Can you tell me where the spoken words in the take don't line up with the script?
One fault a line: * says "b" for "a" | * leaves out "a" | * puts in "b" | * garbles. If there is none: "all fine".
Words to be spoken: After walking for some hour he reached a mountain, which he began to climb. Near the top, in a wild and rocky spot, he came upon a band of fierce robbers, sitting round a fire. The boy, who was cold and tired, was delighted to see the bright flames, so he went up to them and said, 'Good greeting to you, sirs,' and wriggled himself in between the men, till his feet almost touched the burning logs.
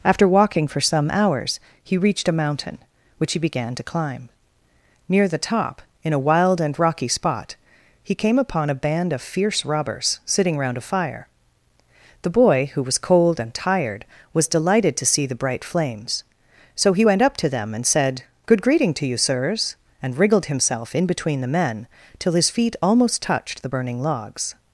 * says "hours" for "hour"